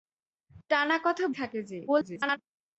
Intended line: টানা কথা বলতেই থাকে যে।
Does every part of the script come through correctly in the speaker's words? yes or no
no